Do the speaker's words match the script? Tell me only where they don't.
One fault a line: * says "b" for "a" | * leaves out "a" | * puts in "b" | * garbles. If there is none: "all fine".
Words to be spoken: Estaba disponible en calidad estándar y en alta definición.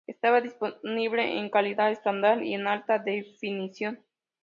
all fine